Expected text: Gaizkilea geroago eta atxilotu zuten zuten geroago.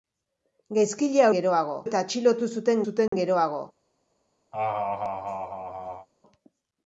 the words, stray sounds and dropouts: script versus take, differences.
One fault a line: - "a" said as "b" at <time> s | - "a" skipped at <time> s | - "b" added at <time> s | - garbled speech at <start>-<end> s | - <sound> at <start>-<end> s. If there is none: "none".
- dropout at 3.1-3.1 s
- laugh at 4.5-6.1 s